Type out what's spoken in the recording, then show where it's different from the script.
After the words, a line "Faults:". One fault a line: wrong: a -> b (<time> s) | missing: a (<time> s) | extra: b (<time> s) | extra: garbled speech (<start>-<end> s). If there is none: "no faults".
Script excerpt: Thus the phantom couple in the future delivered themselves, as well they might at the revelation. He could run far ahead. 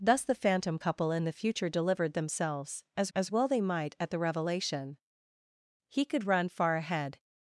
Thus the phantom couple in the future delivered themselves, as as well they might at the revelation. He could run far ahead.
Faults:
extra: as (3.1 s)